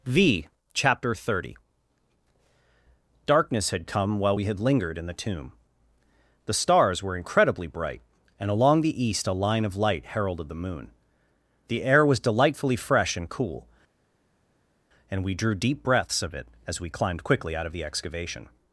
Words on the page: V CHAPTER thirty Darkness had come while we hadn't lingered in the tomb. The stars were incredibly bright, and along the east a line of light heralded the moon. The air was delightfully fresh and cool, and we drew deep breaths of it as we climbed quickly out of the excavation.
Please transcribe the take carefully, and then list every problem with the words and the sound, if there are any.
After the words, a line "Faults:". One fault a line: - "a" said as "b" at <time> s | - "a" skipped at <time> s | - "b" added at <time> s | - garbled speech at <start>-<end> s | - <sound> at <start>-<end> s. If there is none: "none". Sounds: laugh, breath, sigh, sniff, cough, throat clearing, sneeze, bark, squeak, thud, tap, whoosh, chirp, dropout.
V CHAPTER thirty Darkness had come while we had lingered in the tomb. The stars were incredibly bright, and along the east a line of light heralded the moon. The air was delightfully fresh and cool, and we drew deep breaths of it as we climbed quickly out of the excavation.
Faults:
- "hadn't" said as "had" at 4.4 s